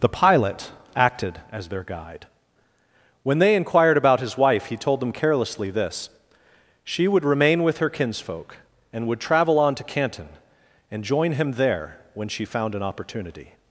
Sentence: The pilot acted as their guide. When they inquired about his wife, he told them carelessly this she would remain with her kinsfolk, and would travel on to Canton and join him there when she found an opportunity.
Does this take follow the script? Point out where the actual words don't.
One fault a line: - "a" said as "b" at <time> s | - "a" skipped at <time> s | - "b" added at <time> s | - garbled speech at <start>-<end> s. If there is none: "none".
none